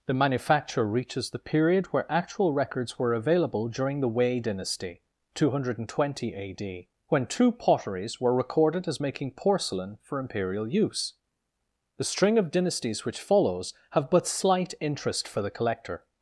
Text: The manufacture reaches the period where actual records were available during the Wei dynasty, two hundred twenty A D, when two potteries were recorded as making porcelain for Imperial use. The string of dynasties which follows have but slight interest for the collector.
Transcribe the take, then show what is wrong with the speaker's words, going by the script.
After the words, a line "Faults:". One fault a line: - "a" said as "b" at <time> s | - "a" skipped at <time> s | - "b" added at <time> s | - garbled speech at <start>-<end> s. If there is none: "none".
The manufacture reaches the period where actual records were available during the Wei dynasty, two hundred twenty A D, when two potteries were recorded as making porcelain for Imperial use. The string of dynasties which follows have but slight interest for the collector.
Faults:
none